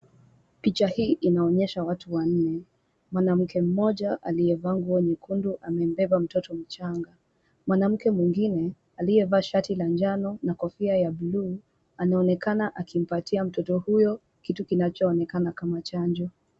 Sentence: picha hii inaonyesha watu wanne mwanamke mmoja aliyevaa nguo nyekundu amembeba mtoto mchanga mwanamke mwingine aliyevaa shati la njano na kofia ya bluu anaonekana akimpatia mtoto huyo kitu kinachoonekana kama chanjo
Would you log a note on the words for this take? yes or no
no